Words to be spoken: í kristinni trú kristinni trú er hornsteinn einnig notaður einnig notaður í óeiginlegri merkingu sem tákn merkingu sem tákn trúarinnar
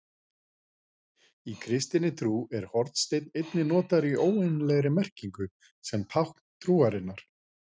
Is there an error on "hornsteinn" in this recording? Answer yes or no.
no